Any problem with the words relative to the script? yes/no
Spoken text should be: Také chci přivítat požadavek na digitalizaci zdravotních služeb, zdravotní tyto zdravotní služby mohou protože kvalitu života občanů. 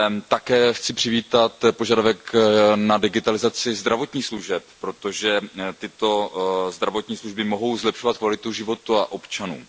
yes